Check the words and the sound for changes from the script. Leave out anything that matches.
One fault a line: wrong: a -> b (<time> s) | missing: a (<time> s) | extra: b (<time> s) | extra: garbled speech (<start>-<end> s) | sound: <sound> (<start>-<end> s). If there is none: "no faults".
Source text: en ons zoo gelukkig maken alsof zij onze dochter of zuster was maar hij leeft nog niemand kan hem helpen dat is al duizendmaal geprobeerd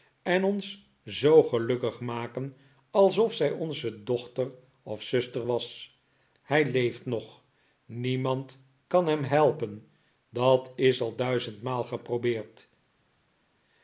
missing: maar (6.0 s)